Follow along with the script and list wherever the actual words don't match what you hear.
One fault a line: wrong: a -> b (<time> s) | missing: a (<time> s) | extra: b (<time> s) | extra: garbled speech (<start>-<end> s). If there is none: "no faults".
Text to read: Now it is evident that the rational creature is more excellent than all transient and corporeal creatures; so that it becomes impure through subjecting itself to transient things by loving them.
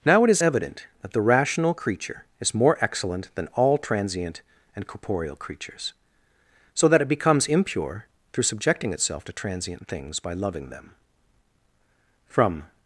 extra: From (12.3 s)